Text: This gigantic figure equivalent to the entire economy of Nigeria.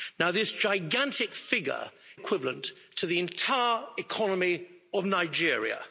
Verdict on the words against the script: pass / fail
pass